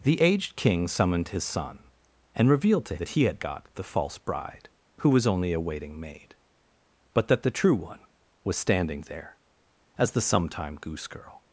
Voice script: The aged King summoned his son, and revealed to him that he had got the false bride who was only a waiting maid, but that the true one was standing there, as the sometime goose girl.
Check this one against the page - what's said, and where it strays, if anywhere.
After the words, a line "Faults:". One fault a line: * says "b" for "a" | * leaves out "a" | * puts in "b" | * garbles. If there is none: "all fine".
The aged King summoned his son, and revealed to that he had got the false bride who was only a waiting maid, but that the true one was standing there, as the sometime goose girl.
Faults:
* leaves out "him"